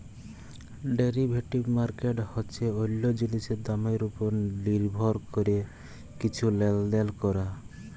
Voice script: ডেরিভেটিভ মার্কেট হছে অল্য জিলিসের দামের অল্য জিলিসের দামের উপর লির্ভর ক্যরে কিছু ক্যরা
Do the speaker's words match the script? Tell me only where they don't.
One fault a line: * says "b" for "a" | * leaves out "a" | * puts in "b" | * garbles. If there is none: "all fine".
* leaves out "অল্য জিলিসের দামের"
* puts in "লেলদেল"